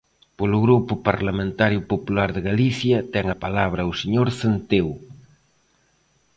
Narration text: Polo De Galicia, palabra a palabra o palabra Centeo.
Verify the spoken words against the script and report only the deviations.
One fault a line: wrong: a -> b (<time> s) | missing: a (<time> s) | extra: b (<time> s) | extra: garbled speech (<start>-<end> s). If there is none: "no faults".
extra: Grupo Parlamentario Popular (0.7 s)
wrong: palabra -> ten (3.1 s)
wrong: palabra -> señor (4.0 s)